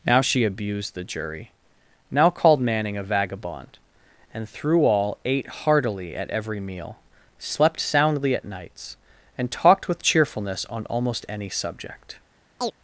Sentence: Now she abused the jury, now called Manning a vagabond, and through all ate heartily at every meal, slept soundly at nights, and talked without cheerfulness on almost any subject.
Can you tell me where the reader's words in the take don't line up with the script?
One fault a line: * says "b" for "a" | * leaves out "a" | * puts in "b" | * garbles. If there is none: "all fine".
* says "with" for "without"